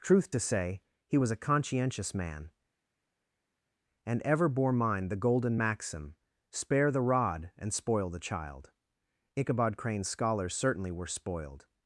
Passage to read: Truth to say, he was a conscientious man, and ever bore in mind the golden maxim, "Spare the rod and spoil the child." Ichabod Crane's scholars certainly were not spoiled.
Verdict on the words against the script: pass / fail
fail